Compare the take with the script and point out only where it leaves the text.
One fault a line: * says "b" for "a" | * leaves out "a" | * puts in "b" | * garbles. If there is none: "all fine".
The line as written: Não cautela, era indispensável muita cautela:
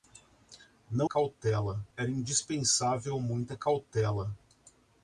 all fine